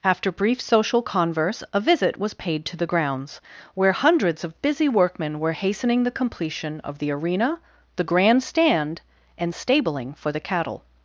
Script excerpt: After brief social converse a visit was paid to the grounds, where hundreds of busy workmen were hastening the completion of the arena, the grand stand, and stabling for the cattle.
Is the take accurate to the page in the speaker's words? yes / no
yes